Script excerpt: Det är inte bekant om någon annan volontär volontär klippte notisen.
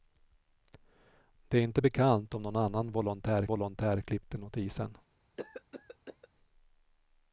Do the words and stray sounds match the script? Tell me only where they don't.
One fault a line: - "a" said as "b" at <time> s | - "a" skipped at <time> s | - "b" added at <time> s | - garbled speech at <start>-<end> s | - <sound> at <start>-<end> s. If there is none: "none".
- cough at 5.4-6.3 s